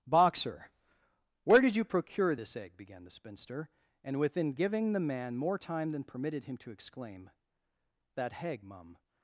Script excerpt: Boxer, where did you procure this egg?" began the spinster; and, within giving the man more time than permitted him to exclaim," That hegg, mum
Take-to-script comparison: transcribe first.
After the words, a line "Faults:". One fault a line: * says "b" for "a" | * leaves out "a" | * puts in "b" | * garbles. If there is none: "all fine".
Boxer, where did you procure this egg?" began the spinster; and, within giving the man more time than permitted him to exclaim," That hegg, mum
Faults:
all fine